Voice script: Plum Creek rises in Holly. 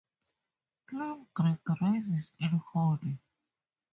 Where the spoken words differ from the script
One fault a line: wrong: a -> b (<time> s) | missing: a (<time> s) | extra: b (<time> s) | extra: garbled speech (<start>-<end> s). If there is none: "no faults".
no faults